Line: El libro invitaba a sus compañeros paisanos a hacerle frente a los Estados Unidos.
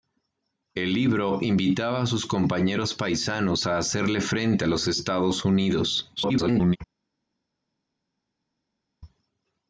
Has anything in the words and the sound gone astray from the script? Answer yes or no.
yes